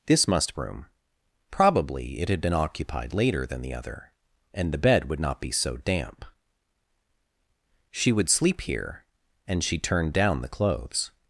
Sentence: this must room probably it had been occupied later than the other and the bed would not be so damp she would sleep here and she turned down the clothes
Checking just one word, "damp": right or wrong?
right